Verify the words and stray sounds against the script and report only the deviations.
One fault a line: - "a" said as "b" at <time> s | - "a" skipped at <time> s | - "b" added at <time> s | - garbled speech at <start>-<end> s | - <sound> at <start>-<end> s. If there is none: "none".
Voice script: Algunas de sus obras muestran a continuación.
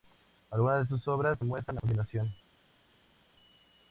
none